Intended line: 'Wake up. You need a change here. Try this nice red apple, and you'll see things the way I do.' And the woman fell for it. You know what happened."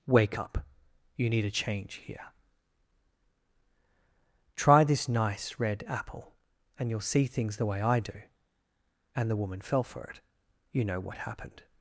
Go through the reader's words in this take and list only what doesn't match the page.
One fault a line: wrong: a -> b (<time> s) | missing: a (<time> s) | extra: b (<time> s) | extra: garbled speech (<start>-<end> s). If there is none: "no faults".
no faults